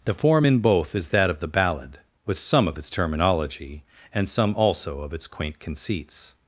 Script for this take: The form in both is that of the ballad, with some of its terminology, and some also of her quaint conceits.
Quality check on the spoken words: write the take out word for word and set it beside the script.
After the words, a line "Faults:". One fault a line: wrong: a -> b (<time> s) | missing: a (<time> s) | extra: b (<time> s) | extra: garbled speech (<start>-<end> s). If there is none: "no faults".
The form in both is that of the ballad, with some of its terminology, and some also of its quaint conceits.
Faults:
wrong: her -> its (5.1 s)